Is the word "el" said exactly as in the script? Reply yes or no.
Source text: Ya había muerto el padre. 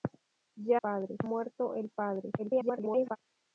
yes